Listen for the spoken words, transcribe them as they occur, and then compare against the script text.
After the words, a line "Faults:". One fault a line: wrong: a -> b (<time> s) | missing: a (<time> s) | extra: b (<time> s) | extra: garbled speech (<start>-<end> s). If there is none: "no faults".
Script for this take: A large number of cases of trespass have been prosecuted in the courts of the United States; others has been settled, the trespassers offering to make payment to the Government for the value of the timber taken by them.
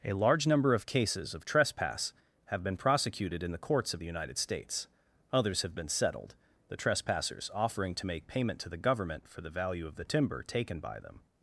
A large number of cases of trespass have been prosecuted in the courts of the United States; others have been settled, the trespassers offering to make payment to the Government for the value of the timber taken by them.
Faults:
wrong: has -> have (5.6 s)